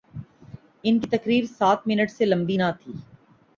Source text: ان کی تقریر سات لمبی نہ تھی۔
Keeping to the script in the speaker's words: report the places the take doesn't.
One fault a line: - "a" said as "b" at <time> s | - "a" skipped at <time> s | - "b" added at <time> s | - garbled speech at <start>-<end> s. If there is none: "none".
- "منٹ سے" added at 1.9 s